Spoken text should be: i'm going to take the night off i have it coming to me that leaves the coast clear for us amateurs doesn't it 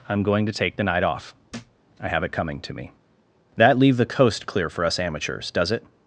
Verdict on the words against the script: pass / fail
fail